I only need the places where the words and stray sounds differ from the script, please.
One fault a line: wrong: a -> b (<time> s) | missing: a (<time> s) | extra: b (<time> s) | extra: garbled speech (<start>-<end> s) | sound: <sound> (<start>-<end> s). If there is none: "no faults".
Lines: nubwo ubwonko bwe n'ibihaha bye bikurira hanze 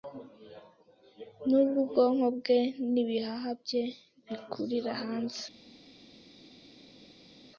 no faults